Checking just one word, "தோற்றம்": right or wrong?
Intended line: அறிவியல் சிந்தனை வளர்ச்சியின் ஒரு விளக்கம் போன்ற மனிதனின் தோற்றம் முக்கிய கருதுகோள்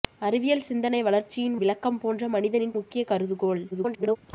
wrong